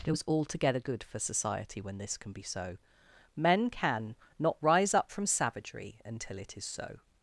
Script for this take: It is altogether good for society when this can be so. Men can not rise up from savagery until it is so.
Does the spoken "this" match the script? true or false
true